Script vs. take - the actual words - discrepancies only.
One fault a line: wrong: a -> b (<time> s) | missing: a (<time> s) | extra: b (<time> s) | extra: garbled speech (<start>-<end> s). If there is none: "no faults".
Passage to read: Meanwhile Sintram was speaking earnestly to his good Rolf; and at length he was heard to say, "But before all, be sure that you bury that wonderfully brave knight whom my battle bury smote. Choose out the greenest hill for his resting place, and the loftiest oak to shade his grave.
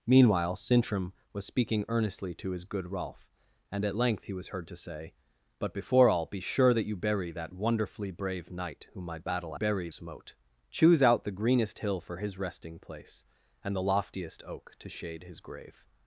no faults